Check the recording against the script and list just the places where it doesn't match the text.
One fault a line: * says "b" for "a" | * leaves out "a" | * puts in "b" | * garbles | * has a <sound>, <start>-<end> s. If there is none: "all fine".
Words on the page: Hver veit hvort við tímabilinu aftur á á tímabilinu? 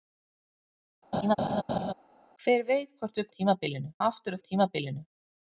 * has a laugh, 1.1-1.9 s